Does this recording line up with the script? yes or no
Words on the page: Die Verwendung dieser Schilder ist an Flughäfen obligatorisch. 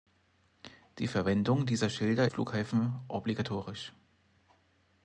no